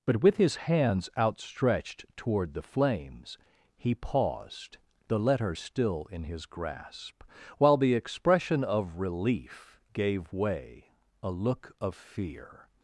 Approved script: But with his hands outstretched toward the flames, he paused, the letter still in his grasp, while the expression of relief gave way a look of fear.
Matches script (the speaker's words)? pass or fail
pass